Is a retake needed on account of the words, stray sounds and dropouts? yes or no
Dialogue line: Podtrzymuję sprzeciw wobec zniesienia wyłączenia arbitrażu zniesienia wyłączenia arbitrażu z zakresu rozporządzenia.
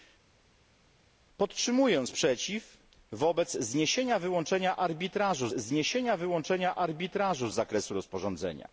no